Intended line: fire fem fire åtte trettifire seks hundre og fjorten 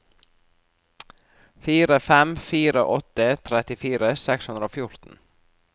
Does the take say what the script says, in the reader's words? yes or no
yes